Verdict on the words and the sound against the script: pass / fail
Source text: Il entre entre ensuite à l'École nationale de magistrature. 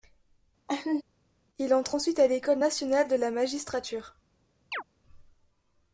fail